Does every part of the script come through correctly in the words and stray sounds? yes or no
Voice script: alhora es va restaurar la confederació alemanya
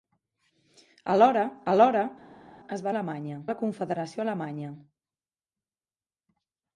no